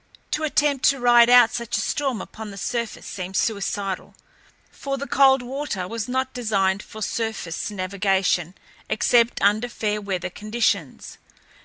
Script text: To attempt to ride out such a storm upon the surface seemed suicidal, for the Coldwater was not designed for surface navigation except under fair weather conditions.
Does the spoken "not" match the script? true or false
true